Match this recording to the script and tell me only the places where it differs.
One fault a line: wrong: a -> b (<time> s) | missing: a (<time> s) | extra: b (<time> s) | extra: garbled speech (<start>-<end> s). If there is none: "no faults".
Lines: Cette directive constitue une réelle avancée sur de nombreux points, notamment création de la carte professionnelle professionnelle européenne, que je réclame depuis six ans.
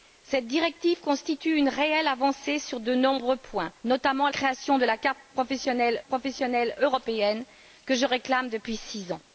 no faults